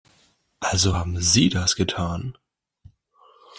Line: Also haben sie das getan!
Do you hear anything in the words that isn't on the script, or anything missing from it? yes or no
no